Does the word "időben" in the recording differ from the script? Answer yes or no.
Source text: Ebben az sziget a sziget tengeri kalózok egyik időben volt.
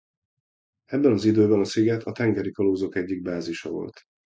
yes